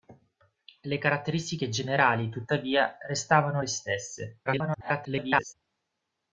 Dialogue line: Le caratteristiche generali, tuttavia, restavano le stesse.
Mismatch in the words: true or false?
true